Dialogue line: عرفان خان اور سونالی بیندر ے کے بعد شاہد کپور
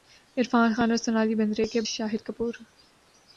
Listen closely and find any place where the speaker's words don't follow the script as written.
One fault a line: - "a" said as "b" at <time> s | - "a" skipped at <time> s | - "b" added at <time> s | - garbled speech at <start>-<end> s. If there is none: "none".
- "بعد" skipped at 1.8 s